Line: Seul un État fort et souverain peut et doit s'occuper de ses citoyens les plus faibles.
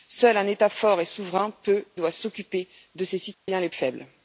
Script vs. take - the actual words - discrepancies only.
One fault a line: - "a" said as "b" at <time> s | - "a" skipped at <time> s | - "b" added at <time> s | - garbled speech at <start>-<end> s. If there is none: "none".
- "et" skipped at 1.9 s
- "plus" skipped at 3.7 s